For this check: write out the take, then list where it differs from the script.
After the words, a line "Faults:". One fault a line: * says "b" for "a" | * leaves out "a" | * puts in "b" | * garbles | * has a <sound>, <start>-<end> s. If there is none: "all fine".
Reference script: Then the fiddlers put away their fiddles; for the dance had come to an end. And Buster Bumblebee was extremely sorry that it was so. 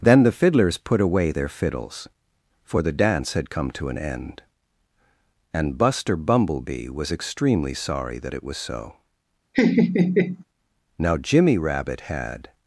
Then the fiddlers put away their fiddles; for the dance had come to an end. And Buster Bumblebee was extremely sorry that it was so. Now, Jimmy Rabbit had
Faults:
* has a laugh, 9.5-10.4 s
* puts in "Now Jimmy Rabbit had"